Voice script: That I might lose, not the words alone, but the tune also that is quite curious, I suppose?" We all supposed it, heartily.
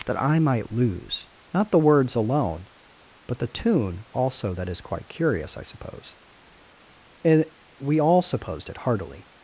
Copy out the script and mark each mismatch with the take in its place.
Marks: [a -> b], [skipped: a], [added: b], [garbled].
That I might lose, not the words alone, but the tune also that is quite curious, I suppose?" [added: and] We all supposed it, heartily.